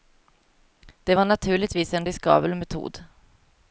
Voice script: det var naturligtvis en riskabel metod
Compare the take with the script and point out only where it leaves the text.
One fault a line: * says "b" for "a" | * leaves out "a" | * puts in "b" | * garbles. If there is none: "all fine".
all fine